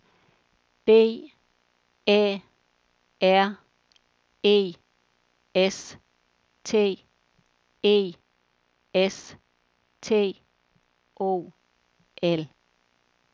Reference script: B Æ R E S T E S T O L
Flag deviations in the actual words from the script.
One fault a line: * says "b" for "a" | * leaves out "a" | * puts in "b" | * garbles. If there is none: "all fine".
all fine